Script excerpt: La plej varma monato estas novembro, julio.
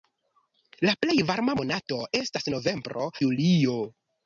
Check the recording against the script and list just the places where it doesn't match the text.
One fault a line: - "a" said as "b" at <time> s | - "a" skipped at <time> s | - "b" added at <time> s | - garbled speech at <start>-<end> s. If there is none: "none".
none